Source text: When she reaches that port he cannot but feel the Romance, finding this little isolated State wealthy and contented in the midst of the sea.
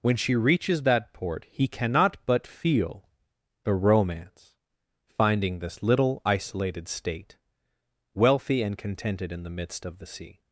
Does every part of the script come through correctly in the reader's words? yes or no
yes